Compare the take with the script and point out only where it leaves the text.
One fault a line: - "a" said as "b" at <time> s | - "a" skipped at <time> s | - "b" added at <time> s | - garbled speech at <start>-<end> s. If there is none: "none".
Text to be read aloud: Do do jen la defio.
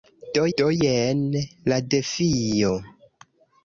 none